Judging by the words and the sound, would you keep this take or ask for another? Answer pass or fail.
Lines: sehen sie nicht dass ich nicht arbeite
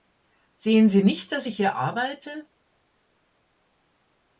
fail